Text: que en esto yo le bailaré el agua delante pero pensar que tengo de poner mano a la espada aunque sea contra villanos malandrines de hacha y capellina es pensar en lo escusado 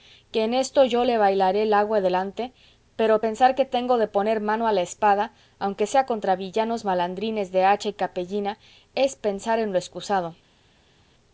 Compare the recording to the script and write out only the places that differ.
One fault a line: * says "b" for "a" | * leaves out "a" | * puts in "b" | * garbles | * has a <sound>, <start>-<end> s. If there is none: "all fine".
all fine